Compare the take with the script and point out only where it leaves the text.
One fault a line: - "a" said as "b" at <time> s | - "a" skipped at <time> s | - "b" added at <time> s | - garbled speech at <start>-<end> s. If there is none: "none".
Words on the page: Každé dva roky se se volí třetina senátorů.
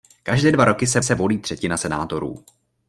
none